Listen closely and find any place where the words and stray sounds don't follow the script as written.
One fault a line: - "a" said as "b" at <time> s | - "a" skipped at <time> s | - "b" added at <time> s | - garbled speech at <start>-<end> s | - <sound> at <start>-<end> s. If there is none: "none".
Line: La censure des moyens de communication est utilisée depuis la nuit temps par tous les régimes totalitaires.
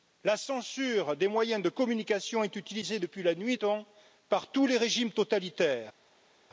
none